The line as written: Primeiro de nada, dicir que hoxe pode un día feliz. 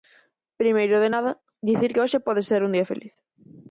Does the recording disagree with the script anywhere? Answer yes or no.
yes